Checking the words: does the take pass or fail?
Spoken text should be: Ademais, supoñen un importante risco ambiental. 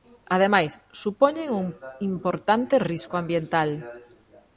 pass